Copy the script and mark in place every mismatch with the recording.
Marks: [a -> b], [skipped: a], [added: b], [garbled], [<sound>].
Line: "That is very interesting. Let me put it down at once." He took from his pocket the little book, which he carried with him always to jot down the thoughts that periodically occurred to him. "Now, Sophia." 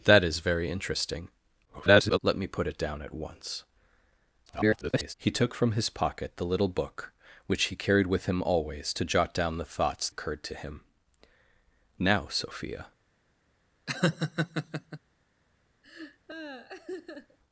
"That is very interesting. [garbled] Let me put it down at once." [garbled] He took from his pocket the little book, which he carried with him always to jot down the thoughts [skipped: that periodically] occurred to him. "Now, Sophia." [laugh] [laugh]